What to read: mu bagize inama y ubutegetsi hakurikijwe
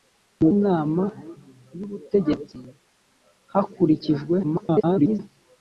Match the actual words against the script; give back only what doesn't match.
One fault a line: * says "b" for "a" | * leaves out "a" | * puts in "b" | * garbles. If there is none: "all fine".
* leaves out "bagize"
* garbles